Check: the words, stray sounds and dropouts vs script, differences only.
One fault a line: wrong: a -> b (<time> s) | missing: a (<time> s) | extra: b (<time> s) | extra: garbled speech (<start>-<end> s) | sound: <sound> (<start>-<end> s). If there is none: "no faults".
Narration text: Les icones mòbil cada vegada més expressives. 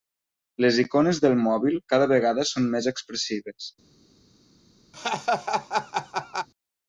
extra: del (1.2 s)
extra: són (2.5 s)
sound: laugh (4.9-6.5 s)